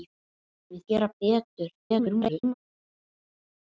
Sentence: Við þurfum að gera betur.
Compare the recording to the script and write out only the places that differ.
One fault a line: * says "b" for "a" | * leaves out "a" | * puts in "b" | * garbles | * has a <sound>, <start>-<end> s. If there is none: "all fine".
* leaves out "þurfum"
* garbles